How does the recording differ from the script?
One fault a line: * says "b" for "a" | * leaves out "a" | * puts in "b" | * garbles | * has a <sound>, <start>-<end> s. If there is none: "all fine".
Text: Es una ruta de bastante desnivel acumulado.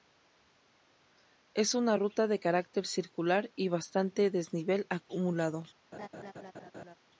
* puts in "carácter circular y"
* has a laugh, 5.9-7.0 s